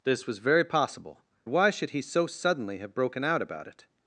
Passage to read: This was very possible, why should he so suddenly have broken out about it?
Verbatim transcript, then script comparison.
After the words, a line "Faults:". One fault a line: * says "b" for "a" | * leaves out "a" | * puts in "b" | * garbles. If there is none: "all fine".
This was very possible, why should he so suddenly have broken out about it?
Faults:
all fine